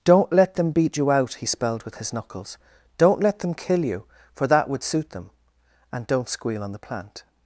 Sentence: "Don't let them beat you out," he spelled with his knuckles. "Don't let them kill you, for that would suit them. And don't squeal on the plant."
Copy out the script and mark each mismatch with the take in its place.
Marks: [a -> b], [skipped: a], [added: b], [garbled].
"Don't let them beat you out," he spelled with his knuckles. "Don't let them kill you, for that would suit them. And don't squeal on the plant."